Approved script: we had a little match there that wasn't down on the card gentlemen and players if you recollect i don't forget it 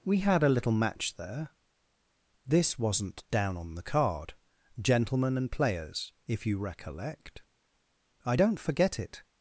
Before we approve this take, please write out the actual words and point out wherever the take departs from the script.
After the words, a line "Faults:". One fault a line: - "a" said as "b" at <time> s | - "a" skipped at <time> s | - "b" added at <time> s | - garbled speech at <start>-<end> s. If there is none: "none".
we had a little match there this wasn't down on the card gentlemen and players if you recollect i don't forget it
Faults:
- "that" said as "this" at 2.5 s